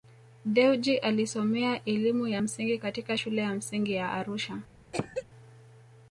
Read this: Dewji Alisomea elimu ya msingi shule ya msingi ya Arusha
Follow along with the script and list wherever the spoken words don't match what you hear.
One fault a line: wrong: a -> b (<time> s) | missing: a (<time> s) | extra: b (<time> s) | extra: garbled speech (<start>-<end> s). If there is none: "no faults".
extra: katika (2.8 s)